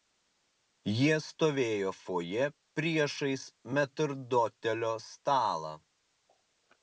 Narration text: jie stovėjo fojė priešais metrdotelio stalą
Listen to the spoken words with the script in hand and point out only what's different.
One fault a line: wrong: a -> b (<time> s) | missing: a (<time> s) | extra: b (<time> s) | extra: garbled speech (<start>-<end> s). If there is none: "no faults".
no faults